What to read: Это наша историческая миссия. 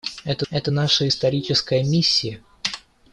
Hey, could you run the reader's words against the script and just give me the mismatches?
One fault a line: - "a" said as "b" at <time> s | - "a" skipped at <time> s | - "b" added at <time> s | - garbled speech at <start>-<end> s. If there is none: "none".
- "это" added at 0.5 s